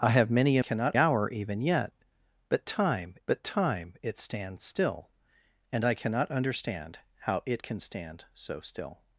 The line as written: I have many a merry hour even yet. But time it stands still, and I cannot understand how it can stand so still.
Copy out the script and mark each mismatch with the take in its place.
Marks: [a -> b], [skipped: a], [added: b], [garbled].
I have many a [merry -> cannot] hour even yet. But time [added: but time] it stands still, and I cannot understand how it can stand so still.